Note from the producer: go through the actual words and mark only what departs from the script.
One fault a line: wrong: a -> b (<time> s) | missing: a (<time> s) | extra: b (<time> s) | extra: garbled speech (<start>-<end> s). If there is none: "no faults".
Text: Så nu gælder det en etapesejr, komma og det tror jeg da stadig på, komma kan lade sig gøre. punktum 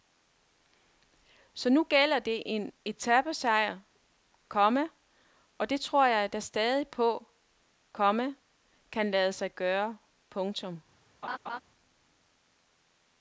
no faults